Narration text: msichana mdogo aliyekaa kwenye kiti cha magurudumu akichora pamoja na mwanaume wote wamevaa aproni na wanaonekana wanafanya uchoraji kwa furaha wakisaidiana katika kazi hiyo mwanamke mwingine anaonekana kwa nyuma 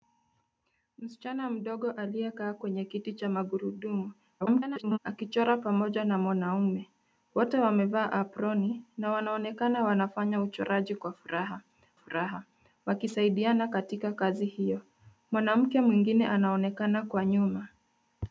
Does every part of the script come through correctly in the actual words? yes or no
no